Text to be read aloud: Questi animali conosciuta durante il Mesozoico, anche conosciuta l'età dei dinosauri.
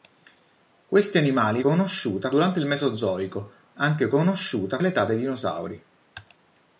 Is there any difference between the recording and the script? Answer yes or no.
no